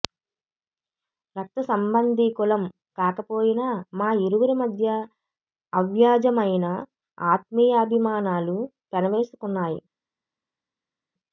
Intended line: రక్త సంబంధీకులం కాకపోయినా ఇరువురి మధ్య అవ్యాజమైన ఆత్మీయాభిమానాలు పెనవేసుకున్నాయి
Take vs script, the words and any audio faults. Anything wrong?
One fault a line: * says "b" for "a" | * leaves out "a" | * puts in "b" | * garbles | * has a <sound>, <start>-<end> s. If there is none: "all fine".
* puts in "మా"